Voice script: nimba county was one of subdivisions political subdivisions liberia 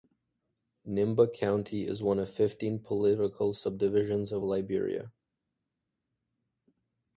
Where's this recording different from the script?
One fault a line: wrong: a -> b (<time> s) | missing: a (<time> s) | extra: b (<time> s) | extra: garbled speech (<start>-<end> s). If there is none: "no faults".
wrong: was -> is (1.9 s)
wrong: subdivisions -> fifteen (2.3 s)
extra: of (4.3 s)